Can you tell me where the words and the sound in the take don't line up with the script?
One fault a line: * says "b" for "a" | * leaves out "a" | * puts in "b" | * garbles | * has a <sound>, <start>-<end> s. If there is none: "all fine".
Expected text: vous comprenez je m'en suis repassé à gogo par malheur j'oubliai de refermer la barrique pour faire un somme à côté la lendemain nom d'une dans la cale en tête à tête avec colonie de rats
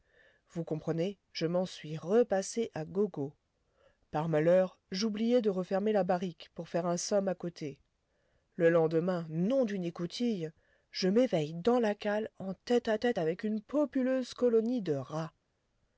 * says "le" for "la"
* puts in "écoutille je m'éveille"
* puts in "une populeuse"